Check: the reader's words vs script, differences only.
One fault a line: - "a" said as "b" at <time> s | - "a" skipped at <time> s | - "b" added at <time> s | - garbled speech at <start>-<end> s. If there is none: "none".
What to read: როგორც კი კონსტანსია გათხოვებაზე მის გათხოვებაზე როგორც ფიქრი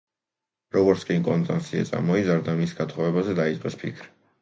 - "გათხოვებაზე" said as "წამოიზარდა" at 1.9 s
- "როგორც" said as "დაიწყეს" at 3.5 s